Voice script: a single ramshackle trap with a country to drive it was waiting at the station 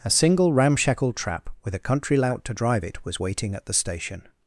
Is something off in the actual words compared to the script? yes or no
yes